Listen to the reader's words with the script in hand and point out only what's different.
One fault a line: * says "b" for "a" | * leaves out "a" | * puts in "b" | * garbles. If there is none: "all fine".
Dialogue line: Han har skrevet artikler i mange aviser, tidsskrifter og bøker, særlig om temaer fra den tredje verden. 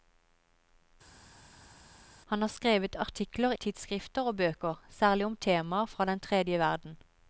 * leaves out "i mange aviser"